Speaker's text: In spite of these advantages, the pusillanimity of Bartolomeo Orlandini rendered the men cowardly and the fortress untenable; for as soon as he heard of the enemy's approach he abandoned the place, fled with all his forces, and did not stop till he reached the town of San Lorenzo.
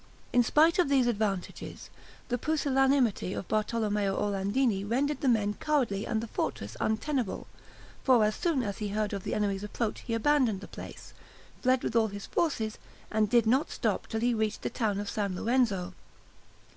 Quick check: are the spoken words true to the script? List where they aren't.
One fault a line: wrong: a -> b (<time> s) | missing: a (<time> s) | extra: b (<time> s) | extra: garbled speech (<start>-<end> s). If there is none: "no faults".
no faults